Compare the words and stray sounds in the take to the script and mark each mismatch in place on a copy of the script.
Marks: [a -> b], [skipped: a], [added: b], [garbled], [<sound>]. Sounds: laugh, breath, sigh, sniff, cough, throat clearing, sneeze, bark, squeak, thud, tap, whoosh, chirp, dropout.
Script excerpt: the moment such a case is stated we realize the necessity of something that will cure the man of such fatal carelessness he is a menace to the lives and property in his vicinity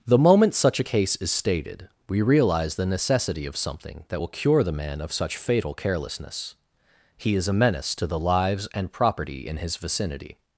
the moment such a case is stated we realize the necessity of something that will cure the man of such fatal carelessness he is a menace to the lives and property in his vicinity